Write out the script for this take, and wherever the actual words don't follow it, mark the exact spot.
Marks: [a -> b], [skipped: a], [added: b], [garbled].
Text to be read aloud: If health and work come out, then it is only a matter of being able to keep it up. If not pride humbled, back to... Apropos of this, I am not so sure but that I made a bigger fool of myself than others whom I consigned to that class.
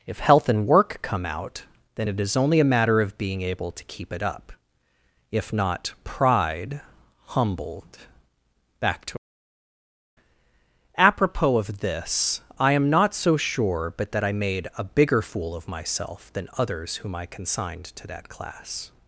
If health and work come out, then it is only a matter of being able to keep it up. If not pride humbled, back to... Apropos of this, I am not so sure but that I made a bigger fool of myself than others whom I consigned to that class.